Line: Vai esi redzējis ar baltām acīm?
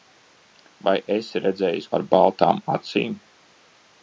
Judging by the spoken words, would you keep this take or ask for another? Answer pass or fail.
pass